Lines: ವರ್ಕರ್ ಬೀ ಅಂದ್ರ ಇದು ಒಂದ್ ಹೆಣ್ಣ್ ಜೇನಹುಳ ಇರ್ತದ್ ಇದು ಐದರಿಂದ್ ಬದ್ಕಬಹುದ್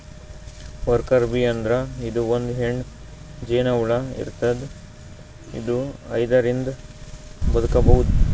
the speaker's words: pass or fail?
pass